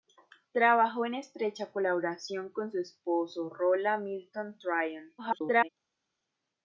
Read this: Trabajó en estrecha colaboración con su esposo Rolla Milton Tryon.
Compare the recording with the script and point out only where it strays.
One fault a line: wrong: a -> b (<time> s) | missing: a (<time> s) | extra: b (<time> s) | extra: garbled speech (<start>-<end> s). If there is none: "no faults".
extra: garbled speech (5.2-5.7 s)